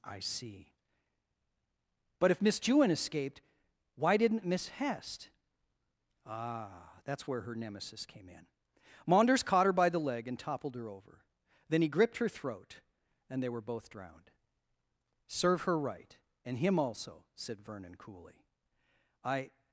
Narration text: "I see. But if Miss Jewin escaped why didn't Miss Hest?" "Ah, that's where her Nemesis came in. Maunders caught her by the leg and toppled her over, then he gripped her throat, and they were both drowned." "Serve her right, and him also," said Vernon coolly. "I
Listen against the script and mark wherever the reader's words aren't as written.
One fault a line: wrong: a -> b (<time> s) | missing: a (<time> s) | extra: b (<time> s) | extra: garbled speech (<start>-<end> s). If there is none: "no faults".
no faults